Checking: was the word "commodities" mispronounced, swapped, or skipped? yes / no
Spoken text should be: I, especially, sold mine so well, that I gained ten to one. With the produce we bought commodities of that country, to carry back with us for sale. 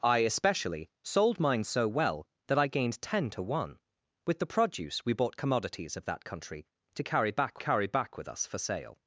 no